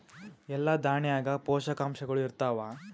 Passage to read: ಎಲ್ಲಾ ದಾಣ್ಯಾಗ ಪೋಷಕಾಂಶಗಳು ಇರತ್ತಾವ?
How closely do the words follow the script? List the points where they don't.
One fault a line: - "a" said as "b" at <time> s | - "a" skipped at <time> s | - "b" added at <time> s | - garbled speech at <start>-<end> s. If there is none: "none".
none